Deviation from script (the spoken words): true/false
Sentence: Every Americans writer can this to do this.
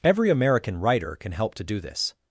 true